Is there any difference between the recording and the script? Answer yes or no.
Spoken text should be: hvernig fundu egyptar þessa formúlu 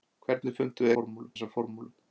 yes